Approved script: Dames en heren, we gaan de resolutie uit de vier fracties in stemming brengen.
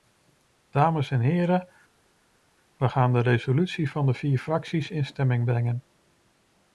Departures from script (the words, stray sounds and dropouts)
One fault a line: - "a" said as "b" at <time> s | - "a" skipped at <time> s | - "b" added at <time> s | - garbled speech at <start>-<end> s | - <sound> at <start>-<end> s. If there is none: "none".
- "uit" said as "van" at 3.9 s